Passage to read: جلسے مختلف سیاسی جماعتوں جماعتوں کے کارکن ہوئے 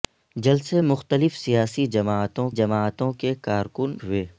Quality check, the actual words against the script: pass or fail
pass